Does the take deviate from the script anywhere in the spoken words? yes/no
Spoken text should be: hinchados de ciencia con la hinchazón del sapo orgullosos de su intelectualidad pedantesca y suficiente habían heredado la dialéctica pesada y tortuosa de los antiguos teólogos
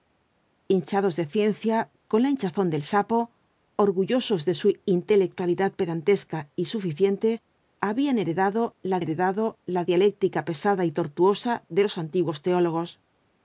yes